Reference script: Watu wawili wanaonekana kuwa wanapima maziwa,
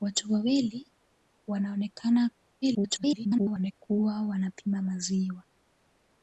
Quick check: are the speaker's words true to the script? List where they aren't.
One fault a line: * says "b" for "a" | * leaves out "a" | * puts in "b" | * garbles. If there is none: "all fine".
* garbles